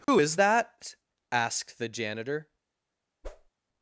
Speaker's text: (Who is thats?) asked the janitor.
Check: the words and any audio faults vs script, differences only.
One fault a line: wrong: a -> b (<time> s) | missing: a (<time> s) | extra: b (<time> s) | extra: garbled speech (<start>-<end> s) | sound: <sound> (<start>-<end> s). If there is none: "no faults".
sound: dropout (0.0-0.1 s)
wrong: thats -> that (0.3 s)
sound: whoosh (3.2-3.5 s)